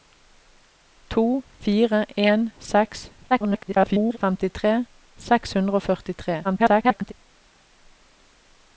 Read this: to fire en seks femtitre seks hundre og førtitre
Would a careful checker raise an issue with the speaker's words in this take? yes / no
yes